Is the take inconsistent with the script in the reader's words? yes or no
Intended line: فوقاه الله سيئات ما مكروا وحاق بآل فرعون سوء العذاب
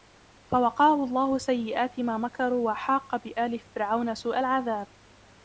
no